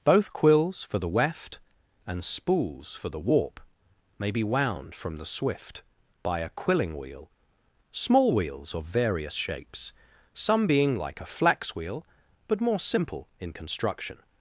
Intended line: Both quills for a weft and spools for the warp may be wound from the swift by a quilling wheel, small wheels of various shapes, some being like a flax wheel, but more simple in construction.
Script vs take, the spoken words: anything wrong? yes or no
yes